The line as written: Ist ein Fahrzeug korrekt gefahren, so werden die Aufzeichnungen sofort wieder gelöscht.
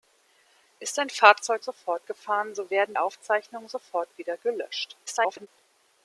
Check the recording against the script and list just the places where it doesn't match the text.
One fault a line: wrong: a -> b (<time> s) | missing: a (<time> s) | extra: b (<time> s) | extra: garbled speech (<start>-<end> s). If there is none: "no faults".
wrong: korrekt -> sofort (1.6 s)
missing: die (3.0 s)
extra: garbled speech (5.1-5.5 s)